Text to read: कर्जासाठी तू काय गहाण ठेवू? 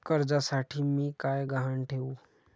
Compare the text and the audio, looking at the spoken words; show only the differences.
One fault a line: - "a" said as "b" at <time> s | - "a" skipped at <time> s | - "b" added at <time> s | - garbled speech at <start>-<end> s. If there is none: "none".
- "तू" said as "मी" at 0.8 s